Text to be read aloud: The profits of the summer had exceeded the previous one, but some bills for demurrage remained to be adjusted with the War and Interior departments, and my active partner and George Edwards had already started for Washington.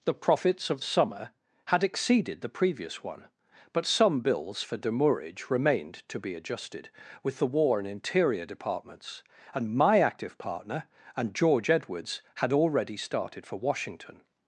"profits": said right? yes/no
yes